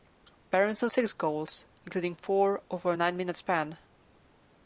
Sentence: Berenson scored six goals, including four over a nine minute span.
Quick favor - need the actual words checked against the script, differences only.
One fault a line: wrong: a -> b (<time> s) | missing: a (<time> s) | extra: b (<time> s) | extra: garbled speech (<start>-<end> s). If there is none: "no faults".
missing: scored (0.9 s)